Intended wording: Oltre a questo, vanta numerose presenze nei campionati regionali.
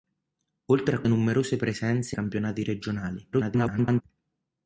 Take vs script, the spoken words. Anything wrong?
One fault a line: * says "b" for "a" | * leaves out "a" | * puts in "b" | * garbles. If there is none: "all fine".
* leaves out "questo vanta"
* leaves out "nei"
* garbles